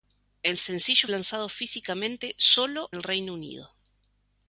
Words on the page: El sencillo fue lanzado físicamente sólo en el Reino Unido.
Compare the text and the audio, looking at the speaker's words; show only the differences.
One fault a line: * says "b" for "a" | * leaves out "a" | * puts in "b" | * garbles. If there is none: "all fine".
* leaves out "fue"
* leaves out "en"